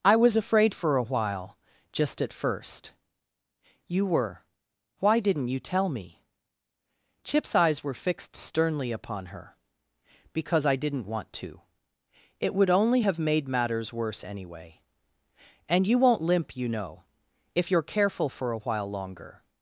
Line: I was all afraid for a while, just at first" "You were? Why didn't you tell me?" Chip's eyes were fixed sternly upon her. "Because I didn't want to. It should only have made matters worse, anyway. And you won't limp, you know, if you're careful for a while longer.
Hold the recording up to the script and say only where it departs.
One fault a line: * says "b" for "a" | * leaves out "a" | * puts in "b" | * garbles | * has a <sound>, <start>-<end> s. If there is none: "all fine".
* leaves out "all"
* says "would" for "should"